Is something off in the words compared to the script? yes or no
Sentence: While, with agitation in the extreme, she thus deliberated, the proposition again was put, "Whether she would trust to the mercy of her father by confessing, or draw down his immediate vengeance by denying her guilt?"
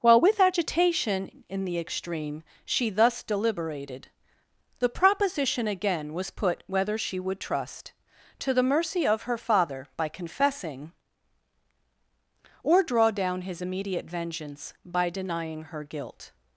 no